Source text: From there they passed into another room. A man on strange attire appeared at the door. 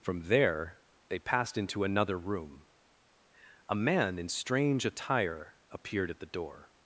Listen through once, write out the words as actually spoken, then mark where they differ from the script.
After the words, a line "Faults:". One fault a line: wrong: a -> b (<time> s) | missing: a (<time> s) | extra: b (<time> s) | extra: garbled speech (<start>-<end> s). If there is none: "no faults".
From there they passed into another room. A man in strange attire appeared at the door.
Faults:
wrong: on -> in (4.2 s)